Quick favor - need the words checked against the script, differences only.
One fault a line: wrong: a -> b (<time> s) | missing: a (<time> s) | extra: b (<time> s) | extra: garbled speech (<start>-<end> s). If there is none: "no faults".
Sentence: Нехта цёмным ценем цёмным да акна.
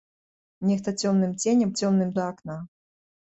no faults